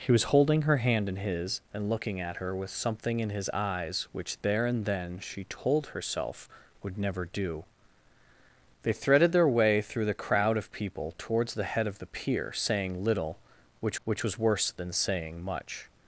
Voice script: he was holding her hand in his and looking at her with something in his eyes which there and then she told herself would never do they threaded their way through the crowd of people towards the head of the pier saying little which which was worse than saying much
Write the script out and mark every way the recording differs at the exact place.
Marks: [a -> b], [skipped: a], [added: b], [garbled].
he was holding her hand in his and looking at her with something in his eyes which there and then she told herself would never do they threaded their way through the crowd of people towards the head of the pier saying little which which was worse than saying much